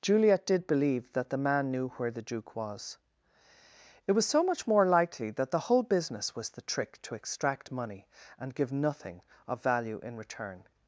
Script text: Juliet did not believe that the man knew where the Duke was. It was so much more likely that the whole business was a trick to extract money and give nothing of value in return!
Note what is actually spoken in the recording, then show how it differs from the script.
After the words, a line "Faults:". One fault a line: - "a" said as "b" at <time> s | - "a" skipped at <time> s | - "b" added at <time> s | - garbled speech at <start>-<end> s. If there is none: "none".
Juliet did believe that the man knew where the Duke was. It was so much more likely that the whole business was the trick to extract money and give nothing of value in return!
Faults:
- "not" skipped at 0.7 s
- "a" said as "the" at 6.5 s